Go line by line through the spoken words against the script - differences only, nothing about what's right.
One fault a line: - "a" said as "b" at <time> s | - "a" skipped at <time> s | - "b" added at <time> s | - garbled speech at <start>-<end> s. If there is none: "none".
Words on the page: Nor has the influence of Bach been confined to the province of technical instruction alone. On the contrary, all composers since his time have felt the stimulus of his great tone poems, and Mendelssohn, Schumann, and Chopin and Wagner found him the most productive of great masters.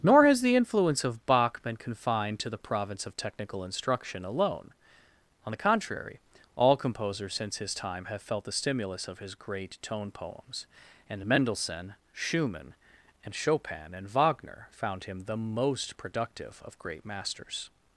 none